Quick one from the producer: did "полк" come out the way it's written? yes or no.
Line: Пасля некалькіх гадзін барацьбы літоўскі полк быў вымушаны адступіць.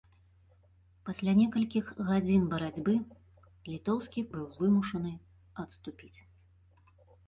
no